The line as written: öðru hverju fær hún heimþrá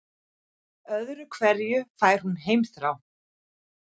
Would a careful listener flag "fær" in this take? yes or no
no